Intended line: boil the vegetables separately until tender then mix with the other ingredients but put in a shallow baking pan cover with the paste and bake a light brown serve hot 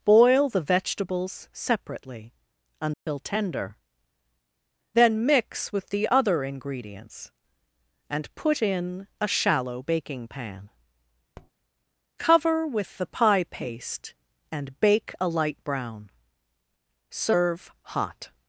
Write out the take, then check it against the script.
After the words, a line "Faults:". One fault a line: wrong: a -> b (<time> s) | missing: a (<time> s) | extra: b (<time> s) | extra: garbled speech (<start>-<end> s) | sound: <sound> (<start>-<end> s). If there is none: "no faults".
boil the vegetables separately until tender then mix with the other ingredients and put in a shallow baking pan cover with the pie paste and bake a light brown serve hot
Faults:
sound: dropout (2.9-3.1 s)
wrong: but -> and (8.1 s)
sound: tap (11.3-11.5 s)
extra: pie (13.1 s)